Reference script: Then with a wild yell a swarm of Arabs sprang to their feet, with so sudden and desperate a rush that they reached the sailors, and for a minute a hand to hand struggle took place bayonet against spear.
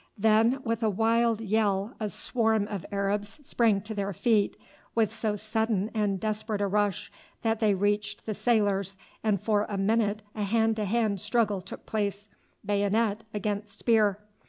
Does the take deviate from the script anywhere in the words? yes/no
no